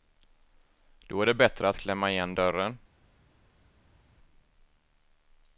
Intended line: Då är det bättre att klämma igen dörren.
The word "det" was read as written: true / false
true